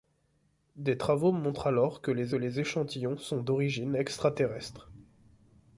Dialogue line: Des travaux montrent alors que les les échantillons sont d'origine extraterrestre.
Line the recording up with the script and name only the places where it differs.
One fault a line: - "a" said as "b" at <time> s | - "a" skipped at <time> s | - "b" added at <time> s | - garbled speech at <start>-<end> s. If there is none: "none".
none